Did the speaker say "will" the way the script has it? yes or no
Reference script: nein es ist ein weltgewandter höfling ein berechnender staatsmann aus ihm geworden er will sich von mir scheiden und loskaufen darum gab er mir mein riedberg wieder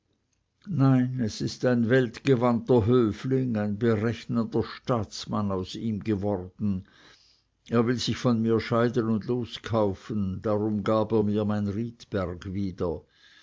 yes